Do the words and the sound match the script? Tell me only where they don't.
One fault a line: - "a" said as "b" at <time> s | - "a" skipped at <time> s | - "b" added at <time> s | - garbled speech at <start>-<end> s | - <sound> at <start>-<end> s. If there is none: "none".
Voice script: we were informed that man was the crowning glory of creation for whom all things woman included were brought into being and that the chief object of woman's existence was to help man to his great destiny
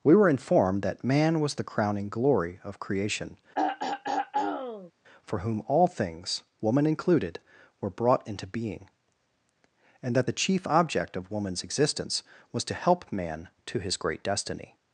- throat clearing at 3.5-4.9 s